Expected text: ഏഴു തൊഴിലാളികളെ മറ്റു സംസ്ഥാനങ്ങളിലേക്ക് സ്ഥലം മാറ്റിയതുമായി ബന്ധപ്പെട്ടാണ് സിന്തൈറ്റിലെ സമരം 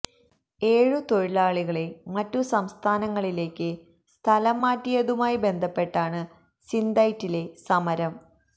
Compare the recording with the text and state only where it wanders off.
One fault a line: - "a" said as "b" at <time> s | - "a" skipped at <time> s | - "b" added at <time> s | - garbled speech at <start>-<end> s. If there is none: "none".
none